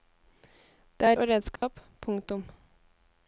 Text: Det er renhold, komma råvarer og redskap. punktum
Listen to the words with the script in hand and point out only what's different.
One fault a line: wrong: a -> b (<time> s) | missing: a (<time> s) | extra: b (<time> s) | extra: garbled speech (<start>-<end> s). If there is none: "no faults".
missing: renhold komma råvarer (1.2 s)